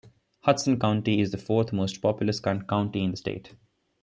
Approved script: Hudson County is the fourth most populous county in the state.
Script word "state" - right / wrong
right